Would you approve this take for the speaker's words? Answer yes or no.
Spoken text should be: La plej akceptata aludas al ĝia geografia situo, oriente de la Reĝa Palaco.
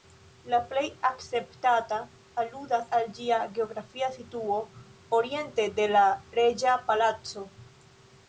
yes